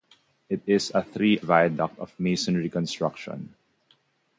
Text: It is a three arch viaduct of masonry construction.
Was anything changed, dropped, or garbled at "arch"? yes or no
yes